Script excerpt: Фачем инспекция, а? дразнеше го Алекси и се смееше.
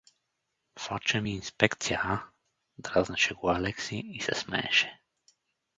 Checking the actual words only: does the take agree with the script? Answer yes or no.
yes